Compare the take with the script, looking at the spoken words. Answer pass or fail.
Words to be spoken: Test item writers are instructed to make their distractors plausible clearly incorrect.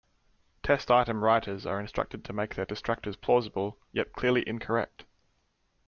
fail